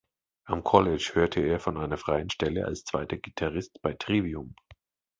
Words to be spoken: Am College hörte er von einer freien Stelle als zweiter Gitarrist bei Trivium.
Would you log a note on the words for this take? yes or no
no